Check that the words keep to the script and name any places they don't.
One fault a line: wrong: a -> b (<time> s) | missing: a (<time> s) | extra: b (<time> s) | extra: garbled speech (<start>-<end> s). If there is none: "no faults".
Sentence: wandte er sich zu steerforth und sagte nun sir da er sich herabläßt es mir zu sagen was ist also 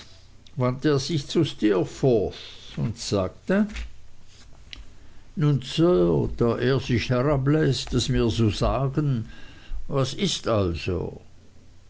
no faults